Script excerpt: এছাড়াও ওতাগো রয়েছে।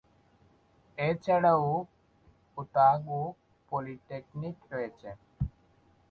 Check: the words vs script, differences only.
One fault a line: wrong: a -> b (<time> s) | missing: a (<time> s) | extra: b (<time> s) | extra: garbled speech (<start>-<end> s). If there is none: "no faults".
extra: পলিটেকনিক (3.7 s)